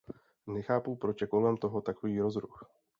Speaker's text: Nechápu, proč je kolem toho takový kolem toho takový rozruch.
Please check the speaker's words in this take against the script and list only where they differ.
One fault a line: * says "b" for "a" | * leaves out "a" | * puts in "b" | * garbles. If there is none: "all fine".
* leaves out "kolem toho takový"